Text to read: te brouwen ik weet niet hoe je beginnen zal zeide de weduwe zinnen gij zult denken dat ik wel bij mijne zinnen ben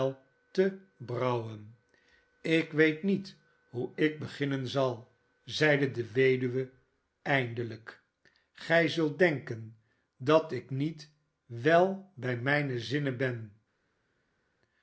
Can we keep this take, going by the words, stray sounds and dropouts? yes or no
no